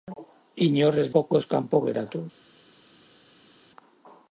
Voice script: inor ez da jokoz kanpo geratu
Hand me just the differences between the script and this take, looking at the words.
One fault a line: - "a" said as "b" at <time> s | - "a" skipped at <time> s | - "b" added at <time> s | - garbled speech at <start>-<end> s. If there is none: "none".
- "da" skipped at 1.1 s